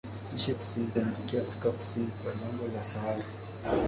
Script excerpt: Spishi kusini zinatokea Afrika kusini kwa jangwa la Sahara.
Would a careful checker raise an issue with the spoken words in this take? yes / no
no